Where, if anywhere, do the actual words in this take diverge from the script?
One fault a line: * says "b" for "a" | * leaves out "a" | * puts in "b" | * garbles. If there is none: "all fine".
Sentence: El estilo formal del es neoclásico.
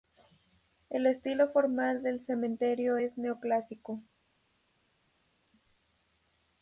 * puts in "cementerio"